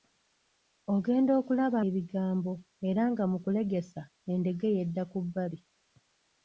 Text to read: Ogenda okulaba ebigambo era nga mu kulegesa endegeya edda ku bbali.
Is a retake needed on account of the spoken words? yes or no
no